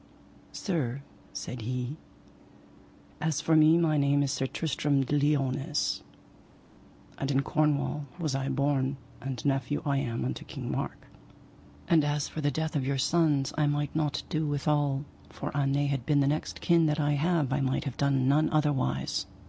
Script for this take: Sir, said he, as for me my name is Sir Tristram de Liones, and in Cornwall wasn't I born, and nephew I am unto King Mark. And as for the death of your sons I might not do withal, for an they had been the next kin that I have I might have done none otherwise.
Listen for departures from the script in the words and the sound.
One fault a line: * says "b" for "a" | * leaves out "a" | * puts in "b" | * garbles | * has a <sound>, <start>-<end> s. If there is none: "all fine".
* says "was" for "wasn't"